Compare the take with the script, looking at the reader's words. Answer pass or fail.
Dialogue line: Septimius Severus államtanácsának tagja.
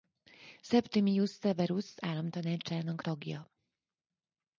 pass